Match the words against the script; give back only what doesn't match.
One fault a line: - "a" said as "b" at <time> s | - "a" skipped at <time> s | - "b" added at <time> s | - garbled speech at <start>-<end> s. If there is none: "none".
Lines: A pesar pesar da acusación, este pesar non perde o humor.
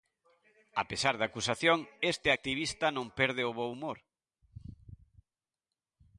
- "pesar" skipped at 1.1 s
- "pesar" said as "activista" at 2.3 s
- "bo" added at 3.6 s